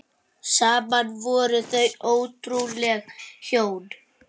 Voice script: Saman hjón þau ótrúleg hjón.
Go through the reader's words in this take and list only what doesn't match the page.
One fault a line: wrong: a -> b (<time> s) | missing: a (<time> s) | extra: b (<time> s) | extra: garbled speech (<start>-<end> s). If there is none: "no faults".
wrong: hjón -> voru (1.2 s)